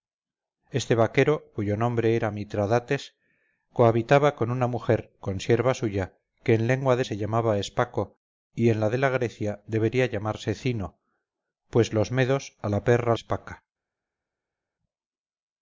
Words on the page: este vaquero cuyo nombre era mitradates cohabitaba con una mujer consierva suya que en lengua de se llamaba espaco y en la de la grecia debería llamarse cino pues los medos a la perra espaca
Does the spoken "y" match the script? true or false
true